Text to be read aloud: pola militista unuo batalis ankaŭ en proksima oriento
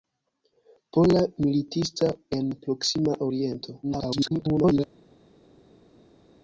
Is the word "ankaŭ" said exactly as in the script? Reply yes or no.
no